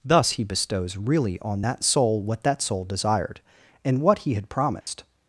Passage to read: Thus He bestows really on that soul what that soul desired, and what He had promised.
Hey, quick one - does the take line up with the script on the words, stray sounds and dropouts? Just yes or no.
no